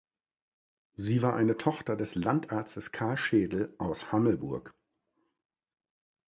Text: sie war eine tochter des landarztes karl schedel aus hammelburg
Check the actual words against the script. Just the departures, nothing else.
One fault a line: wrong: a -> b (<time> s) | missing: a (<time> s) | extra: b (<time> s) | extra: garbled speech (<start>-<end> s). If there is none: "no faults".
no faults